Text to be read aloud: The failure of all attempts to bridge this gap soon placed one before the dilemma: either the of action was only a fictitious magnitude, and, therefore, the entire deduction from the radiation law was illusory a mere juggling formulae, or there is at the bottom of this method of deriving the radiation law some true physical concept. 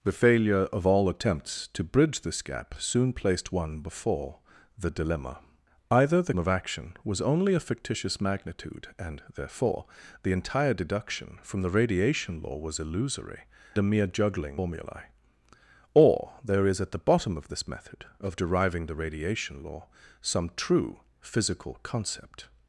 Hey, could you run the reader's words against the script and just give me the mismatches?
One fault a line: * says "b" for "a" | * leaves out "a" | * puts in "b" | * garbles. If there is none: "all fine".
all fine